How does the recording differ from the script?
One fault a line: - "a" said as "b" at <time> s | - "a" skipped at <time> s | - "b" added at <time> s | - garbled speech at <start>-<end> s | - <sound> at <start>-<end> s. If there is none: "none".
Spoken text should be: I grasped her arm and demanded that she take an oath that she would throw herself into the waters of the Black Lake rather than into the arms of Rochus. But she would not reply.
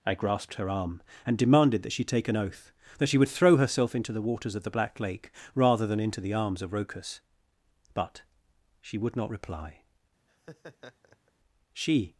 - laugh at 10.3-11.3 s
- "She" added at 11.7 s